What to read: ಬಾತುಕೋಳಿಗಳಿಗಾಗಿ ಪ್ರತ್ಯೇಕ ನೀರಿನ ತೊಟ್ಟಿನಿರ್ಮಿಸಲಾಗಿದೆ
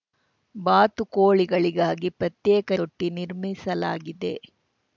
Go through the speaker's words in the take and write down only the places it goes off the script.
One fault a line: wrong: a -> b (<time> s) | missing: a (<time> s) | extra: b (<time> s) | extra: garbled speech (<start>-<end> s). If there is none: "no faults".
missing: ನೀರಿನ (2.7 s)